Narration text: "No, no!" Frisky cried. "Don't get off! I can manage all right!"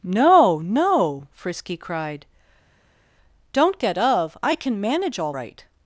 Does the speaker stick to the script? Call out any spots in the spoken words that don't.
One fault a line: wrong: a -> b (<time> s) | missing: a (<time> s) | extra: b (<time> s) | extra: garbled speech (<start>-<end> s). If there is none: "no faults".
wrong: off -> of (4.0 s)